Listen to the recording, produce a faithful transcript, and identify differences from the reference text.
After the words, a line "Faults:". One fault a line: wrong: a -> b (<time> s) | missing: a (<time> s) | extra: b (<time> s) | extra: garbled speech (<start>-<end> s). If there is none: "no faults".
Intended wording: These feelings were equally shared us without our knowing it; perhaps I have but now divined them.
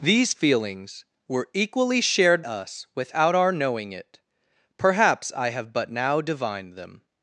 These feelings were equally shared us without our knowing it; perhaps I have but now divined them.
Faults:
no faults